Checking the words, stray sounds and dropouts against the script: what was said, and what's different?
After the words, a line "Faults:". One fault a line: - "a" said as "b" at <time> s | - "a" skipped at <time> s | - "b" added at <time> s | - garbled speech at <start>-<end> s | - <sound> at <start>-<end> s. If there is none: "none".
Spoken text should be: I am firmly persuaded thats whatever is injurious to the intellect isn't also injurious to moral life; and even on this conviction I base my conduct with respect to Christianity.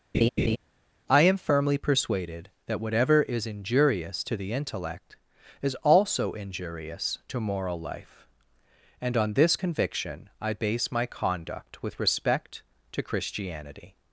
I am firmly persuaded that whatever is injurious to the intellect is also injurious to moral life; and on this conviction I base my conduct with respect to Christianity.
Faults:
- laugh at 0.1-0.6 s
- "thats" said as "that" at 2.7 s
- "isn't" said as "is" at 5.6 s
- "even" skipped at 9.2 s